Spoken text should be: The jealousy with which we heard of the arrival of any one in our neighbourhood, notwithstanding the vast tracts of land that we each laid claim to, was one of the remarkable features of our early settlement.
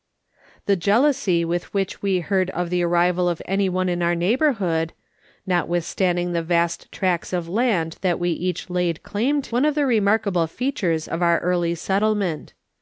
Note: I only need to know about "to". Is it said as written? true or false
false